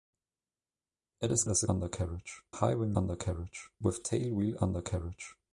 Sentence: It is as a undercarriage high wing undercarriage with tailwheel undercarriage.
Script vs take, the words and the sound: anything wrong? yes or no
no